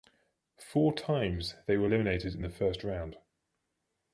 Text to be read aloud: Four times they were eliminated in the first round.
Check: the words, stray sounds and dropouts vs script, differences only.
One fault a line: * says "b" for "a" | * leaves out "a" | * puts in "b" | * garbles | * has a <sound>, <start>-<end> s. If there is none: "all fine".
all fine